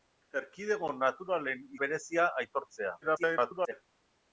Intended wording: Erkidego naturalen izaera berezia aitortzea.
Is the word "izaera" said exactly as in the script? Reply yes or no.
no